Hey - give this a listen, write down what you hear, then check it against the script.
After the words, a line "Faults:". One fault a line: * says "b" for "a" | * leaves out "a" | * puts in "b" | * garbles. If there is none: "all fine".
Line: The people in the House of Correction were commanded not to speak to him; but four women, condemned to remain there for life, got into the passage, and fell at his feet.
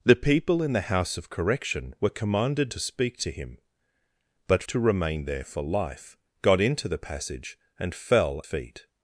The people in the House of Correction were commanded to speak to him; but to remain there for life, got into the passage, and fell feet.
Faults:
* leaves out "not"
* leaves out "four women condemned"
* leaves out "at his"